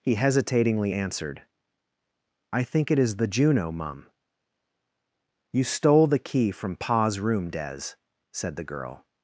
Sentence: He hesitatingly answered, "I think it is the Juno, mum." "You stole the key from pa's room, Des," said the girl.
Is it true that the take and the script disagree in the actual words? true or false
false